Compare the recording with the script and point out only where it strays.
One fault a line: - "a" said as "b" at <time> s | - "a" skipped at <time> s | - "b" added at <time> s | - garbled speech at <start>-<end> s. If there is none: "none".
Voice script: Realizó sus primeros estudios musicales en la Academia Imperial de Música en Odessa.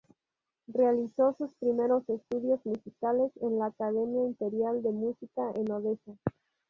none